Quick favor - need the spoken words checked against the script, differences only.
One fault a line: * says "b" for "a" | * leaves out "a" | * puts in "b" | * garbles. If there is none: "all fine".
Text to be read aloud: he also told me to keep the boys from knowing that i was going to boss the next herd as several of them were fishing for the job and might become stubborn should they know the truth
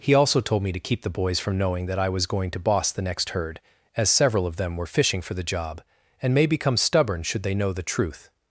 * says "may" for "might"